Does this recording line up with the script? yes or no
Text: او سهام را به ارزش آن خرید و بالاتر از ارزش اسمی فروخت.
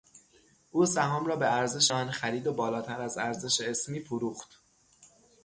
yes